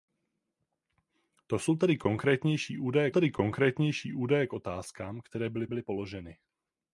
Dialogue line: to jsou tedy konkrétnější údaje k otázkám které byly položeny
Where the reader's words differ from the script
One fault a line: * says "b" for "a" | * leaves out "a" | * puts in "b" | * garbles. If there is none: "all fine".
* puts in "tedy konkrétnější údaje"
* puts in "byly"